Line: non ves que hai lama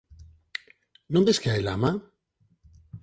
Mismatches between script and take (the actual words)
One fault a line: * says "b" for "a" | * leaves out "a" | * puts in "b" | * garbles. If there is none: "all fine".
all fine